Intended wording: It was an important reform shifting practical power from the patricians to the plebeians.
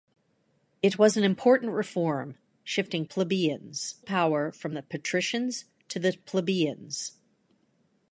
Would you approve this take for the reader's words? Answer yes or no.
no